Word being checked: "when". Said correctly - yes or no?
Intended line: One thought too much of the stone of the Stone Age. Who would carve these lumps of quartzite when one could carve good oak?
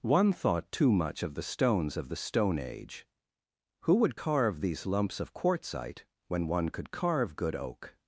yes